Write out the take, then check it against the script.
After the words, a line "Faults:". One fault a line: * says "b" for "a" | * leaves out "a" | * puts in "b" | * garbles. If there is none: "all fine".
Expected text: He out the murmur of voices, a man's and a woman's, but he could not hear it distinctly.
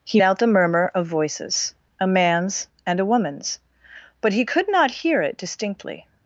He out the murmur of voices, a man's and a woman's, but he could not hear it distinctly.
Faults:
all fine